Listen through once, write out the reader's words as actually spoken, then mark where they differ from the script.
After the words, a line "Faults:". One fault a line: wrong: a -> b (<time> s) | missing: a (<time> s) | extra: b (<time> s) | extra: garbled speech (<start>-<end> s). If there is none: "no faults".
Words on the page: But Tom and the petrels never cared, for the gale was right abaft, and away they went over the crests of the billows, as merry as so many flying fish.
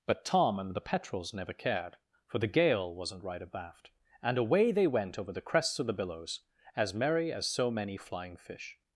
But Tom and the petrels never cared, for the gale wasn't right abaft, and away they went over the crests of the billows, as merry as so many flying fish.
Faults:
wrong: was -> wasn't (2.9 s)